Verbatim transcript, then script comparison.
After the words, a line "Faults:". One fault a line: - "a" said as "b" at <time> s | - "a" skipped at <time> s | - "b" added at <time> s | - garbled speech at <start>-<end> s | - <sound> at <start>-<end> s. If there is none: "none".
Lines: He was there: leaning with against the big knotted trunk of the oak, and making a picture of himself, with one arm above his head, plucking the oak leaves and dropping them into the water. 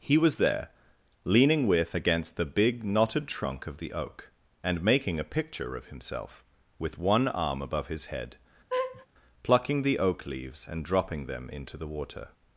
He was there: leaning with against the big knotted trunk of the oak, and making a picture of himself, with one arm above his head, plucking the oak leaves and dropping them into the water.
Faults:
- laugh at 8.7-9.1 s